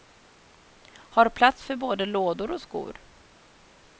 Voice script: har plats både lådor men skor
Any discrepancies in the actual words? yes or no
yes